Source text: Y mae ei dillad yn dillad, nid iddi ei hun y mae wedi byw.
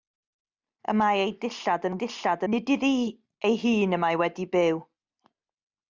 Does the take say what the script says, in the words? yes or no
yes